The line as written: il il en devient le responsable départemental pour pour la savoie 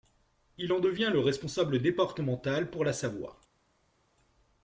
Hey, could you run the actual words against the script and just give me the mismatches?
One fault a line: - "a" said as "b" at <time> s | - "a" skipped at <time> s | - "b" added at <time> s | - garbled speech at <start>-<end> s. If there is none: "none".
- "il" skipped at 0.7 s
- "pour" skipped at 2.9 s